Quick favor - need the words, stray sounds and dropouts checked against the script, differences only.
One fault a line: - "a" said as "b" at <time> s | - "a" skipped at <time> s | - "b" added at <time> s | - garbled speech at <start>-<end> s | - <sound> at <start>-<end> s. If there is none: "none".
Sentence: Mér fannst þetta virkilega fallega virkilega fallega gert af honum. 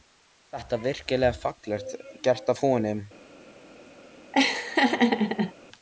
- "virkilega fallega" skipped at 2.0 s
- laugh at 4.3-5.5 s